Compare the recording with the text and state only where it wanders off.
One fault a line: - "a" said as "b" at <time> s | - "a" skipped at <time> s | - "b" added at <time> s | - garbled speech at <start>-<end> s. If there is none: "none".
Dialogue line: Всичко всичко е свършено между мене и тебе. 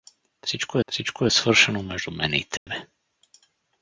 none